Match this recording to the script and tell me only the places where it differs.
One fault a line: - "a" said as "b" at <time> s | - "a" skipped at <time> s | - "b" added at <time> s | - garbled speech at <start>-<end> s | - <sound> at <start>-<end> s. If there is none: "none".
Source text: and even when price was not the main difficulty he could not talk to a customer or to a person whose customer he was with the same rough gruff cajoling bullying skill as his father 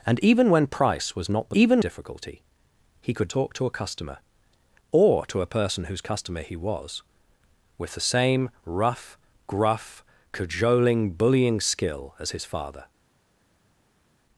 - "main" said as "even" at 1.6 s
- "not" skipped at 3.3 s